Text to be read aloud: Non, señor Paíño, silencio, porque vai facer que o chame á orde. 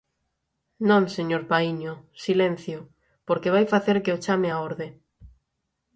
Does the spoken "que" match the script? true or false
true